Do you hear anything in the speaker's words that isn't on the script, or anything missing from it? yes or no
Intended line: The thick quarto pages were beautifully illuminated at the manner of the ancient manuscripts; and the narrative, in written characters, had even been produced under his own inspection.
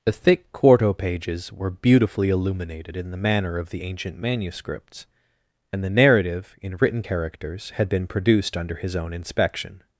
yes